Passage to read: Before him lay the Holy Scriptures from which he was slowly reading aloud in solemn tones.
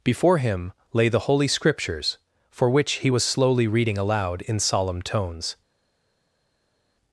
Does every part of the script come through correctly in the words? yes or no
no